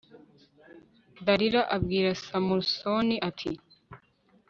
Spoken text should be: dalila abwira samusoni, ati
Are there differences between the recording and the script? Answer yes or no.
no